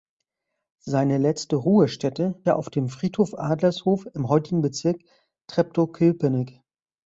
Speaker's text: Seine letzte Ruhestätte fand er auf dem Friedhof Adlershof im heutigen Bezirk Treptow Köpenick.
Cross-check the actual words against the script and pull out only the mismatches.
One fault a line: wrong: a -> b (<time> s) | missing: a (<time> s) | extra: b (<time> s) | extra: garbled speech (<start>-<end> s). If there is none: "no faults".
missing: fand (2.4 s)